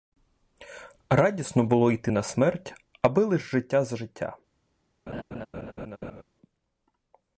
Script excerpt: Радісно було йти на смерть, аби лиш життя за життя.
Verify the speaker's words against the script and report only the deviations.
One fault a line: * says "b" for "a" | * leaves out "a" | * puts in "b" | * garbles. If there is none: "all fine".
all fine